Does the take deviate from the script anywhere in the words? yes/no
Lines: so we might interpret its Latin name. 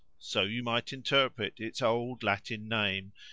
yes